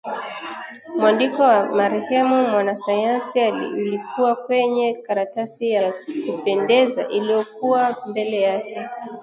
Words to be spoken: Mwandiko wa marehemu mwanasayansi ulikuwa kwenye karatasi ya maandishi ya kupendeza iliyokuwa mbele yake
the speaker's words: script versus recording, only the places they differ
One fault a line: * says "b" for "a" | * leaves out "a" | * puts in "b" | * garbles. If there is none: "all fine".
* leaves out "maandishi"